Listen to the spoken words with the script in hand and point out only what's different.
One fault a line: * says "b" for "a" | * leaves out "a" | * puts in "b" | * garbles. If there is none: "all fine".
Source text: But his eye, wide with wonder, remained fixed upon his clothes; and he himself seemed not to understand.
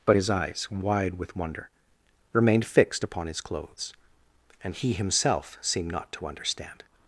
* says "eyes" for "eye"